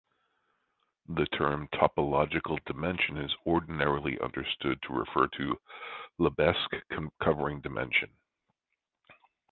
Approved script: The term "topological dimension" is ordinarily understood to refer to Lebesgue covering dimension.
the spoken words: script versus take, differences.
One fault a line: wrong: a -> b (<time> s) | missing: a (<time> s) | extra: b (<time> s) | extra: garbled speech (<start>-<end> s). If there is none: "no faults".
no faults